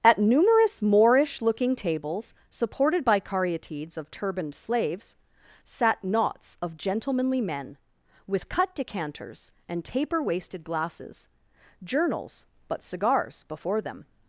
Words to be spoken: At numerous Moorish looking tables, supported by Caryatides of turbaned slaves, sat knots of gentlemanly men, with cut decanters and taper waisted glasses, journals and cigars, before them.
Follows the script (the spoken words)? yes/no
no